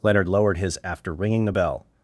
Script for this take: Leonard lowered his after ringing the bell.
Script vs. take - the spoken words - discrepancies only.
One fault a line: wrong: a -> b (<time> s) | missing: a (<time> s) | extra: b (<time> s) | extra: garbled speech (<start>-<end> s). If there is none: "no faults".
no faults